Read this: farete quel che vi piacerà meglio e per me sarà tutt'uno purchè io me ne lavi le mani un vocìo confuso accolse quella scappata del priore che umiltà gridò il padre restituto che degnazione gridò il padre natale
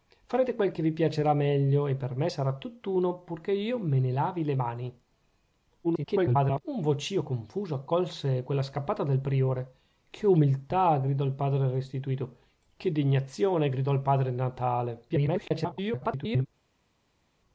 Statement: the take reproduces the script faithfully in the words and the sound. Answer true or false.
false